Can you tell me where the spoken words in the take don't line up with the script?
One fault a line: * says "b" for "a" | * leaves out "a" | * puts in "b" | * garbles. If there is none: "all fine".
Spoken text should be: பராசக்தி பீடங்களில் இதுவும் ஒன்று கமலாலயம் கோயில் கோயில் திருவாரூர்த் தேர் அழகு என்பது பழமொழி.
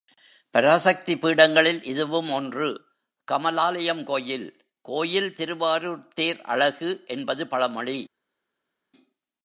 all fine